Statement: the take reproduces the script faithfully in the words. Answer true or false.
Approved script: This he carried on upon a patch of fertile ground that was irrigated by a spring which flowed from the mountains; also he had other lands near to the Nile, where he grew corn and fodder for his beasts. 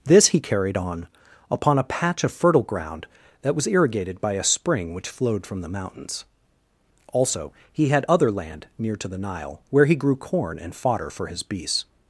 false